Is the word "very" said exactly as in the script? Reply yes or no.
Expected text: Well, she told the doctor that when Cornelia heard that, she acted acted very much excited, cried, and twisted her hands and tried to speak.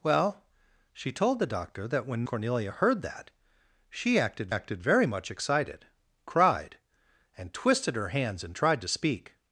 yes